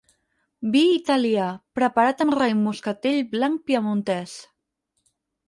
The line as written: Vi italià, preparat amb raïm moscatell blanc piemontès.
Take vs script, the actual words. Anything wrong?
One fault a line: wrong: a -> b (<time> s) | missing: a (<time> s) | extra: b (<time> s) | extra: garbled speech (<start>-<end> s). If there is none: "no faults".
no faults